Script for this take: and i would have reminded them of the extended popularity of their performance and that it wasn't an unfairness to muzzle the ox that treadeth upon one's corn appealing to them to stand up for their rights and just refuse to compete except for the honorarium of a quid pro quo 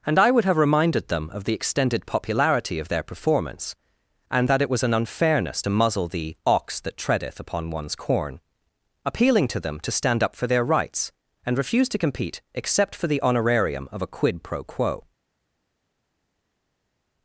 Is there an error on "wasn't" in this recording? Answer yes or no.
yes